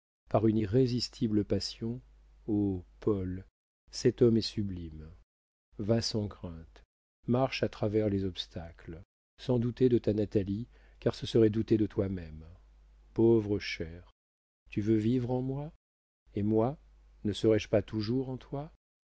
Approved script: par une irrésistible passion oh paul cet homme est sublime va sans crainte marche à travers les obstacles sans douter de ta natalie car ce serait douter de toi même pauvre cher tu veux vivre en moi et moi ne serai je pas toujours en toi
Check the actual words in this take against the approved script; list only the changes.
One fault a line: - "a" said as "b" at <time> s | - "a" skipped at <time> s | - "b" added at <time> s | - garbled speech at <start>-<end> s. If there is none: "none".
none